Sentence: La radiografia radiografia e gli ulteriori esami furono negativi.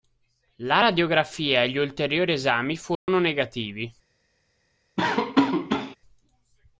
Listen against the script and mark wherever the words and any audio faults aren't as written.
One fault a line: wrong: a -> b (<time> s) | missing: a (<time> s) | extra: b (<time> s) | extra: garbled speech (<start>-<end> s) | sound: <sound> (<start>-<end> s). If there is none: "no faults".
missing: radiografia (1.6 s)
sound: dropout (3.0-3.1 s)
sound: laugh (5.0-6.0 s)